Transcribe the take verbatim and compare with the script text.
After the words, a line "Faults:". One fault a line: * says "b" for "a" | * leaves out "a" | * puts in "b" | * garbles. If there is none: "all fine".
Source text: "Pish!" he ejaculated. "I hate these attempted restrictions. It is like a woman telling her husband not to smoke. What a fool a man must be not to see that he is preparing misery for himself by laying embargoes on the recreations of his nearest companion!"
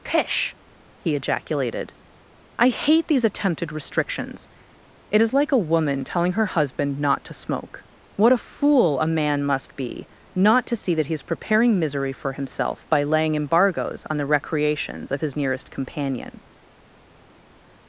"Pish!" he ejaculated. "I hate these attempted restrictions. It is like a woman telling her husband not to smoke. What a fool a man must be not to see that he is preparing misery for himself by laying embargoes on the recreations of his nearest companion!"
Faults:
all fine